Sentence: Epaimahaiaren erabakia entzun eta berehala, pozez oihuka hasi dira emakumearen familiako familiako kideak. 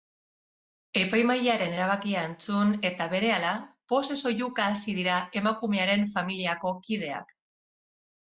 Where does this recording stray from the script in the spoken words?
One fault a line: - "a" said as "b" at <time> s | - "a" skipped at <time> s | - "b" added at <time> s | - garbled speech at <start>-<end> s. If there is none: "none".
- "familiako" skipped at 6.7 s